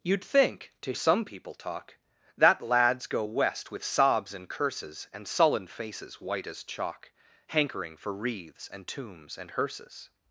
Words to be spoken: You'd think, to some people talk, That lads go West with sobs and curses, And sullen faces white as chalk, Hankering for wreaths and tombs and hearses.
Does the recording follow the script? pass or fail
pass